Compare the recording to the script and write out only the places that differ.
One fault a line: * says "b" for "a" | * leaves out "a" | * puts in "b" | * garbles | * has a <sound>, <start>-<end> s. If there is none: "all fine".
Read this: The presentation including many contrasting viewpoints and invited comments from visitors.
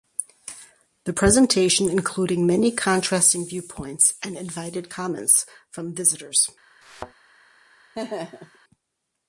* has a thud, 6.8-7.1 s
* has a laugh, 7.9-8.6 s